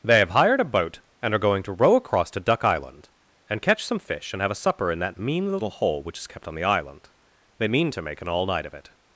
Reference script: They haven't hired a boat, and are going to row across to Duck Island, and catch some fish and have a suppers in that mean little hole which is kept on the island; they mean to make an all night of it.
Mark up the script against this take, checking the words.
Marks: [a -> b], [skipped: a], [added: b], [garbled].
They [haven't -> have] hired a boat, and are going to row across to Duck Island, and catch some fish and have a [suppers -> supper] in that mean little hole which is kept on the island; they mean to make an all night of it.